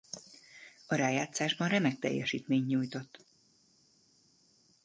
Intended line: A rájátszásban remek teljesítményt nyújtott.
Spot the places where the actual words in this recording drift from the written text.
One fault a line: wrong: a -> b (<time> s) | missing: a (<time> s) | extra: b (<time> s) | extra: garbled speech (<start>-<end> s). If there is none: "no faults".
no faults